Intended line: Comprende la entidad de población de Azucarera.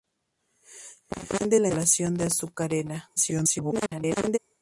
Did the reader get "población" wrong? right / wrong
wrong